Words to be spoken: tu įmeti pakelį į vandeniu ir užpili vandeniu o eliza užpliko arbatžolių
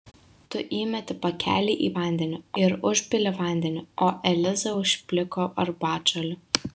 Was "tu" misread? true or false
false